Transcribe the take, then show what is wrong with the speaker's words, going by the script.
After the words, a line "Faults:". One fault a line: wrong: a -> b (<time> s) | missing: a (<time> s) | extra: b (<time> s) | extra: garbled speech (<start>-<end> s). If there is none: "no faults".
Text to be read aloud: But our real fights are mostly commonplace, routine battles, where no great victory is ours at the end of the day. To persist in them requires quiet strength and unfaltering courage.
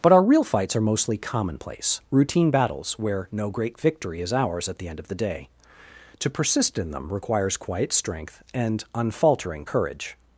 But our real fights are mostly commonplace, routine battles, where no great victory is ours at the end of the day. To persist in them requires quiet strength and unfaltering courage.
Faults:
no faults